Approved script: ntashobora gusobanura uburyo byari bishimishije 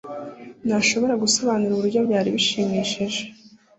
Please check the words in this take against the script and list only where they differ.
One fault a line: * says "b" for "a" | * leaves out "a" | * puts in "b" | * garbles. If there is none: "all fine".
all fine